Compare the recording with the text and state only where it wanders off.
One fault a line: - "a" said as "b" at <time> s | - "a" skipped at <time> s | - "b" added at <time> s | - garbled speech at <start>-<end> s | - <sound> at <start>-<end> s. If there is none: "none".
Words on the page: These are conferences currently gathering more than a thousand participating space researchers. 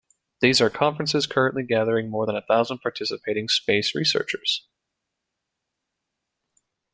none